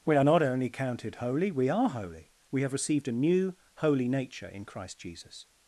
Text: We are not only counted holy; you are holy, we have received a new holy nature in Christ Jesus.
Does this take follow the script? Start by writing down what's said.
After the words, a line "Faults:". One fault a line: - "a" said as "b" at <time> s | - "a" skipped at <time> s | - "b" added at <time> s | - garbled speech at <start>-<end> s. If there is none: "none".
We are not only counted holy; we are holy, we have received a new holy nature in Christ Jesus.
Faults:
- "you" said as "we" at 1.5 s